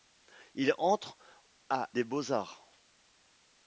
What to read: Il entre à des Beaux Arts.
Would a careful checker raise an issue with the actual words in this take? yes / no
no